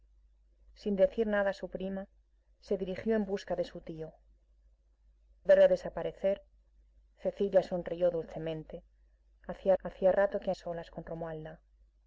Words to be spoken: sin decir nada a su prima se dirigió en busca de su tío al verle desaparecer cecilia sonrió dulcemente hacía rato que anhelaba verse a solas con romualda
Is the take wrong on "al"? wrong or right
wrong